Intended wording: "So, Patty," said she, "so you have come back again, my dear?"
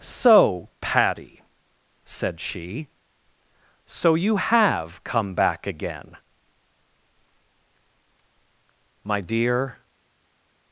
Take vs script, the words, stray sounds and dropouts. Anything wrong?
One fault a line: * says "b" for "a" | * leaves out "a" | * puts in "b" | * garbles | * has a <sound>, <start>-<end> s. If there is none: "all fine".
all fine